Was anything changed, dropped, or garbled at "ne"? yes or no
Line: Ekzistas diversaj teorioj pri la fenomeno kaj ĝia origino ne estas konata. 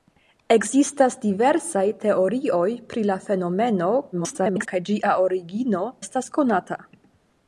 yes